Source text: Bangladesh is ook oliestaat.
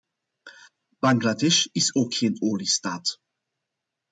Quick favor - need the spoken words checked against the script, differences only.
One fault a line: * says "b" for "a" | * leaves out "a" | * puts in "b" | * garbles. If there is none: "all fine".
* puts in "geen"